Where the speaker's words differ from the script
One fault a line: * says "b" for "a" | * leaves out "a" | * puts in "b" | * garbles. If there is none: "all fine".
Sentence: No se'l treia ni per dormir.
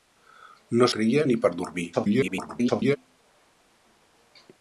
* leaves out "se'l"
* garbles